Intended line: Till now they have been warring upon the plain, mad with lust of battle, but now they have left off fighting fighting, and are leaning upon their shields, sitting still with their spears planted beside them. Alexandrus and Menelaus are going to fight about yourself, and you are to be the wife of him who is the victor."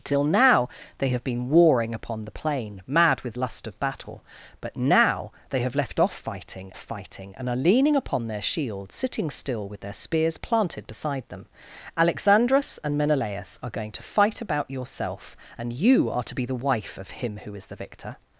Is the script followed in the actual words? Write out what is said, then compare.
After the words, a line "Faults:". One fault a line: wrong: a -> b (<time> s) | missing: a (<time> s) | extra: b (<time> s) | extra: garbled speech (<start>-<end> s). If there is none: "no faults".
Till now they have been warring upon the plain, mad with lust of battle, but now they have left off fighting fighting, and are leaning upon their shields, sitting still with their spears planted beside them. Alexandrus and Menelaus are going to fight about yourself, and you are to be the wife of him who is the victor."
Faults:
no faults